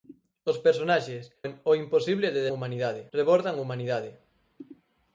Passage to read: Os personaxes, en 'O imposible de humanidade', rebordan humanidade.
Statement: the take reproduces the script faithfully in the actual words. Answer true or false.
true